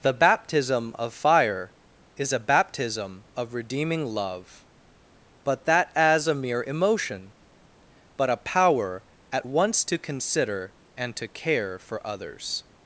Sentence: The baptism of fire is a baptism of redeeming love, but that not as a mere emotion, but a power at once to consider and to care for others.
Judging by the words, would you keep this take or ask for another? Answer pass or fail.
fail